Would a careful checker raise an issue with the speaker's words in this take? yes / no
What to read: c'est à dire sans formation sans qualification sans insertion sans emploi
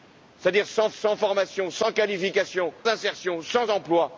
yes